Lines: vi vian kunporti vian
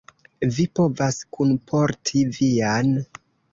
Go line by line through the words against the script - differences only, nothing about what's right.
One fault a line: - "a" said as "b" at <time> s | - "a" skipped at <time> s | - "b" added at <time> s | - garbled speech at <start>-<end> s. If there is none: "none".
- "vian" said as "povas" at 0.8 s